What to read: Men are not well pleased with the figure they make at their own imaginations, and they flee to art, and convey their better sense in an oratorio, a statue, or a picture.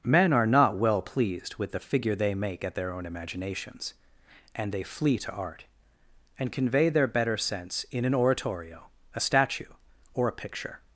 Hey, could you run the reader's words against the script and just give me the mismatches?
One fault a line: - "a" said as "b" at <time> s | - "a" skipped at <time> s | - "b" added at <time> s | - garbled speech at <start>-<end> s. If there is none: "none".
none